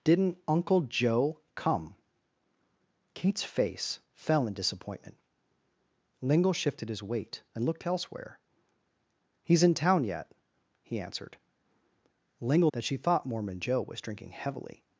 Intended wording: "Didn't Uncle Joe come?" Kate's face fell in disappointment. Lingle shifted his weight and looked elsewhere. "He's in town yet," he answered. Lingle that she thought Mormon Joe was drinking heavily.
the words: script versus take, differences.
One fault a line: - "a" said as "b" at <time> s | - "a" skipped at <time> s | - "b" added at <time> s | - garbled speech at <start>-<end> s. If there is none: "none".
none